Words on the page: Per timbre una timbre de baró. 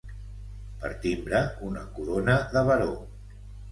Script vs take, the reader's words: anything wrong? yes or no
yes